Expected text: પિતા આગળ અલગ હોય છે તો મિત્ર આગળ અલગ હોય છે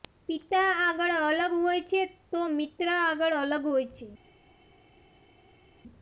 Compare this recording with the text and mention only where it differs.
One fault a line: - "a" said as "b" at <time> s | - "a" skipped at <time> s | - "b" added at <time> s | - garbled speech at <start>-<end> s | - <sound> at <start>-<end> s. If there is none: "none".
none